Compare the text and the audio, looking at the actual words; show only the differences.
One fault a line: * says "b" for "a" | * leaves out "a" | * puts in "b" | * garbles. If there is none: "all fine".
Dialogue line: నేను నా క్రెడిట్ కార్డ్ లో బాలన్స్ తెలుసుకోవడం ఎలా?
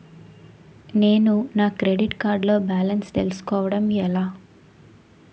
all fine